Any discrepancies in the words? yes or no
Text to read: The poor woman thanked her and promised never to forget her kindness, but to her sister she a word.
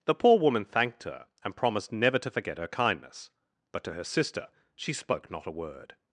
yes